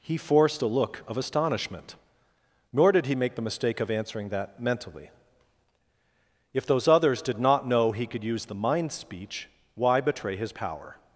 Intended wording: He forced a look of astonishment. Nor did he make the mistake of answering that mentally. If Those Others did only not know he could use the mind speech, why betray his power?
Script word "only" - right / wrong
wrong